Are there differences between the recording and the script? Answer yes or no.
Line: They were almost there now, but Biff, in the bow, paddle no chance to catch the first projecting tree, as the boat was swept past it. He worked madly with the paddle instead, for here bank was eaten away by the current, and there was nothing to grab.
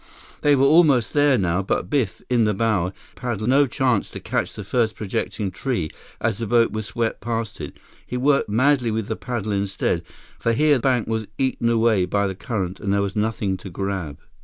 no